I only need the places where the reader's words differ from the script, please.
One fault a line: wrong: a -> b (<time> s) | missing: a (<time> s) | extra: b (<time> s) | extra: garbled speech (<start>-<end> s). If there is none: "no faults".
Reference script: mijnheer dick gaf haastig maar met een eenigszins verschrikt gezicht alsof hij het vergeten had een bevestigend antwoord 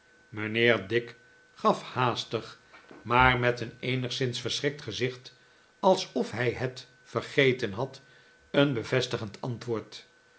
no faults